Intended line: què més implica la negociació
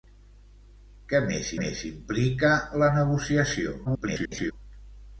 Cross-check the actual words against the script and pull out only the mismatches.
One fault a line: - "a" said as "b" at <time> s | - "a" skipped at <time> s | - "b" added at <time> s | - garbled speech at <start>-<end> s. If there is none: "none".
- "més" added at 1.6 s
- garbled speech at 3.8-4.5 s